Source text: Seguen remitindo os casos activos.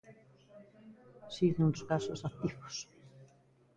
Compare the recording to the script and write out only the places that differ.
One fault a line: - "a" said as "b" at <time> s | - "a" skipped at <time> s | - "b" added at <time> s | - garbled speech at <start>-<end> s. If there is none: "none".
- "remitindo" skipped at 1.7 s